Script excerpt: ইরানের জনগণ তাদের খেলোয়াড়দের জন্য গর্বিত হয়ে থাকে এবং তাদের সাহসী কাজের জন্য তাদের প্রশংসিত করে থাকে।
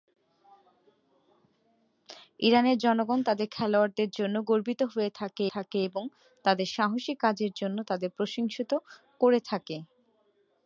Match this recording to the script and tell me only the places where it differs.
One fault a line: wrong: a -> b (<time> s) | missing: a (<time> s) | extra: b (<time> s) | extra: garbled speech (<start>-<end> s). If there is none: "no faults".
extra: থাকে (5.5 s)